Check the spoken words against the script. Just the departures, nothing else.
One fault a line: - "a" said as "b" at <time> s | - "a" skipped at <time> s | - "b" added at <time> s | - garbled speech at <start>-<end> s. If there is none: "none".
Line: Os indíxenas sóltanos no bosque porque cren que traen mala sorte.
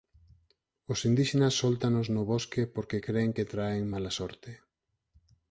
none